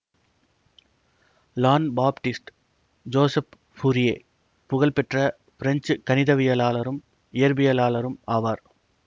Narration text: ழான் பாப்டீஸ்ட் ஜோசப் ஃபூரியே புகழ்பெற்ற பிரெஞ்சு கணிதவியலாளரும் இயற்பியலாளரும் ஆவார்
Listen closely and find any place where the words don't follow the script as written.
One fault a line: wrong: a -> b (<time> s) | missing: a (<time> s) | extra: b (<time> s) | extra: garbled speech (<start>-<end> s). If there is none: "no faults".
no faults